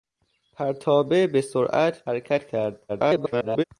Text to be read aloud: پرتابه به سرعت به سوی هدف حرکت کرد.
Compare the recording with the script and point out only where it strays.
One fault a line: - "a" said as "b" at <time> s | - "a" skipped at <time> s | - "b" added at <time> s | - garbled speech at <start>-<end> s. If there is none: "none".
- "به سوی هدف" skipped at 2.1 s
- garbled speech at 2.9-3.6 s